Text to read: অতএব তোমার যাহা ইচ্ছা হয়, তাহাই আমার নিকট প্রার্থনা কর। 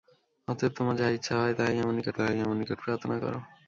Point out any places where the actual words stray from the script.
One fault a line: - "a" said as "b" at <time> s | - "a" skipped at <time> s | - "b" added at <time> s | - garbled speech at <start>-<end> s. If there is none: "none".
- "তাহাই আমার নিকট" added at 2.2 s